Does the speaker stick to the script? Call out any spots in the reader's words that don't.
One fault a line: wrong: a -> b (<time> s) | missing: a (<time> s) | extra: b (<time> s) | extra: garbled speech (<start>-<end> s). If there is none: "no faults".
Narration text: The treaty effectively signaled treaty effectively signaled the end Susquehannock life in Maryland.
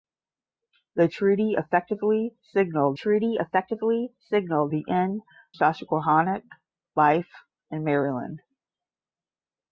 no faults